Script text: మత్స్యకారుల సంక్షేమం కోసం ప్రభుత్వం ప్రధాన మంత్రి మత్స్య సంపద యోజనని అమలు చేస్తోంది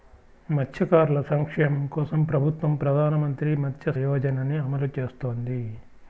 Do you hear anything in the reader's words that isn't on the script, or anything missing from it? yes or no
yes